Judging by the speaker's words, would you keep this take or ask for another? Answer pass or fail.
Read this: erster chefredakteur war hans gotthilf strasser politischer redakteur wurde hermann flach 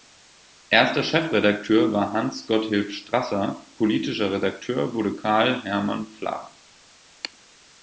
fail